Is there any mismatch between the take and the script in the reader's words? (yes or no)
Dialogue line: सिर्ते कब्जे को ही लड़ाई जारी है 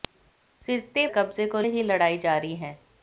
no